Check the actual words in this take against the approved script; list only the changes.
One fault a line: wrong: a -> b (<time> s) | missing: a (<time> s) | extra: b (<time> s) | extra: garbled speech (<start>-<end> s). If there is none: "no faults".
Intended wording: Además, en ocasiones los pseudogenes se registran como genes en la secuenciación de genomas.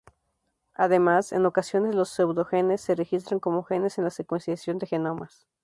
no faults